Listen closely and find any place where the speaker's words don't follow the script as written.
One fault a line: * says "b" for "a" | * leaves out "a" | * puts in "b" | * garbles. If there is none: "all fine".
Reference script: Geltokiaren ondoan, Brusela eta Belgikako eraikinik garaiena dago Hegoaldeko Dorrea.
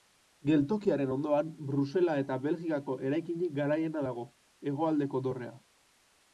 all fine